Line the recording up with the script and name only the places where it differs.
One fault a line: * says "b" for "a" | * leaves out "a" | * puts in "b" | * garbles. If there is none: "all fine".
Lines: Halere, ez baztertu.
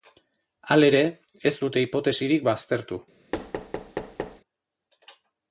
* puts in "dute hipotesirik"